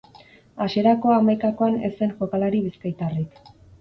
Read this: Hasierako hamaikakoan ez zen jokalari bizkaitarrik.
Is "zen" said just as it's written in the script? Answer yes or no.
yes